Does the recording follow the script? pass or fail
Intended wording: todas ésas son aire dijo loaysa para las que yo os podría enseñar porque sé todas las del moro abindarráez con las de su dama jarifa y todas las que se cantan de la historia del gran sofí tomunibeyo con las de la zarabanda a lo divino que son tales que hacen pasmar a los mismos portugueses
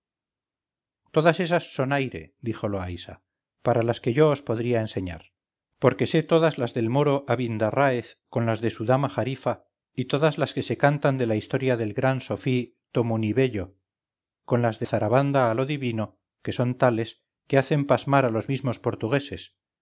fail